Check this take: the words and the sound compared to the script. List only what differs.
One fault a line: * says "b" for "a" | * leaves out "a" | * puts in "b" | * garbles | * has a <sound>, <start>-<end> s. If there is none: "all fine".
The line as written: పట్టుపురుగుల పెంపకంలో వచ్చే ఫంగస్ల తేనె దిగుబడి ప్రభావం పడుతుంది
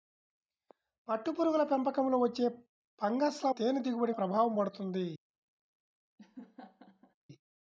* has a laugh, 6.2-7.1 s